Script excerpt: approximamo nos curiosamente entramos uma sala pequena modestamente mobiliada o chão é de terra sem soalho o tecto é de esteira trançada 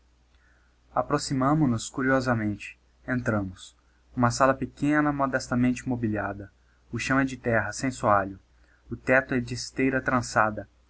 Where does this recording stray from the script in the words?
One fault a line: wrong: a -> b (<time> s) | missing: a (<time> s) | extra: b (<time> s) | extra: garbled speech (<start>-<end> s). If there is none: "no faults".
no faults